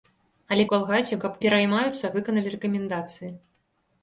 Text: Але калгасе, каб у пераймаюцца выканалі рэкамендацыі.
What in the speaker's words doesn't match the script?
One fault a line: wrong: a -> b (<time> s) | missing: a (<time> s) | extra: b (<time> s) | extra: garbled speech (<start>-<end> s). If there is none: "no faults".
no faults